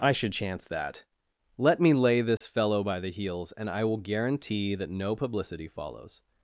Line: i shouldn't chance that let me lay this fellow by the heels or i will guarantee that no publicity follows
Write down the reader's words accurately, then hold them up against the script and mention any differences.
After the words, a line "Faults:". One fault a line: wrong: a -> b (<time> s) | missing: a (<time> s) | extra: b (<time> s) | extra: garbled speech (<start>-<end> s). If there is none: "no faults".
i should chance that let me lay this fellow by the heels and i will guarantee that no publicity follows
Faults:
wrong: shouldn't -> should (0.1 s)
wrong: or -> and (3.6 s)